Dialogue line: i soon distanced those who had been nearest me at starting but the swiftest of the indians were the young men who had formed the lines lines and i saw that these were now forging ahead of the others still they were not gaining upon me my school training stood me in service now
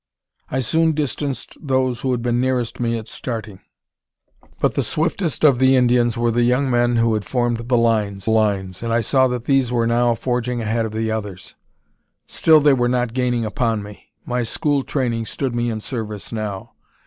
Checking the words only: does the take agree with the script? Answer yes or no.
yes